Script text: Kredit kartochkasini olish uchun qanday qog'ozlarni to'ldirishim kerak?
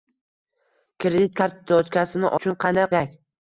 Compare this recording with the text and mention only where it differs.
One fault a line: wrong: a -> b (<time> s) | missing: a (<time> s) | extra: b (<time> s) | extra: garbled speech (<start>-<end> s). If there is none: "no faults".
missing: olish (2.3 s)
missing: qog'ozlarni to'ldirishim (2.9 s)